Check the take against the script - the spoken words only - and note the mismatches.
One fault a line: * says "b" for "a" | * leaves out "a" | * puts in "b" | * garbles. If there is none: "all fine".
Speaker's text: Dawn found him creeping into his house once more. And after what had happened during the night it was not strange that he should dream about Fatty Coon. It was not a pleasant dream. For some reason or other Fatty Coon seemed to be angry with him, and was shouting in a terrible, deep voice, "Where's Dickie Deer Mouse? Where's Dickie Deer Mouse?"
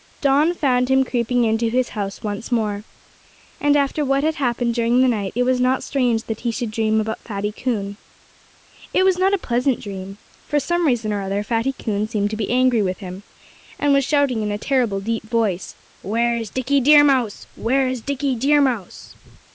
all fine